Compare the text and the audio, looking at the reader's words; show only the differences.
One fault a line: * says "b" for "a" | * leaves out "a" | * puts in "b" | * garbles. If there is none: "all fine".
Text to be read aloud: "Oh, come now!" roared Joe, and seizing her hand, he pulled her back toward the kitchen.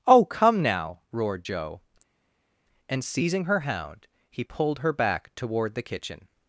* says "hound" for "hand"